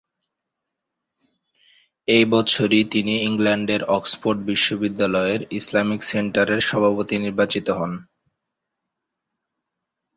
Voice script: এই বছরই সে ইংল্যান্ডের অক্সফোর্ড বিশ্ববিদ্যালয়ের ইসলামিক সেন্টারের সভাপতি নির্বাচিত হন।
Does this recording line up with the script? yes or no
no